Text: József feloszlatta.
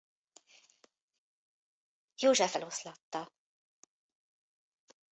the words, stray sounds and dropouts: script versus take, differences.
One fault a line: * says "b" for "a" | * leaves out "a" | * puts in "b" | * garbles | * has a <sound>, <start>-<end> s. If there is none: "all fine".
all fine